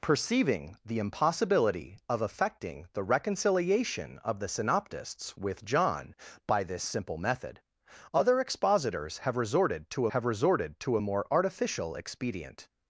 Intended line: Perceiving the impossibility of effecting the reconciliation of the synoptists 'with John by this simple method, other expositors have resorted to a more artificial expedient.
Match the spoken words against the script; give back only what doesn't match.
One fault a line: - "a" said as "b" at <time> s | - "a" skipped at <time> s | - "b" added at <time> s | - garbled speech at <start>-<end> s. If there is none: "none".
- "have resorted to" added at 10.1 s